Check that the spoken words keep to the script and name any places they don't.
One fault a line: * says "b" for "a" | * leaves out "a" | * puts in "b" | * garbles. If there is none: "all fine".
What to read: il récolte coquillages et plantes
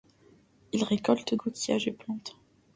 all fine